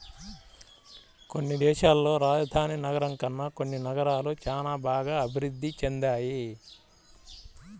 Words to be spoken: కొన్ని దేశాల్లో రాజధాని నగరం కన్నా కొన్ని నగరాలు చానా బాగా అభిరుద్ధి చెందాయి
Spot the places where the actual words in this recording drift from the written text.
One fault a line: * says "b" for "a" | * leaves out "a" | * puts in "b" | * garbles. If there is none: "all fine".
all fine